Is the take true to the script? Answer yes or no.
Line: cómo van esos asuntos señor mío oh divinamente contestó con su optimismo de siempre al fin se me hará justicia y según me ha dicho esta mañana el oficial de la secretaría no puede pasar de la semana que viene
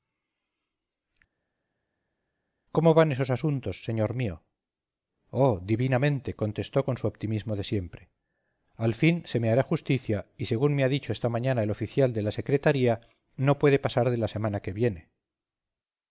yes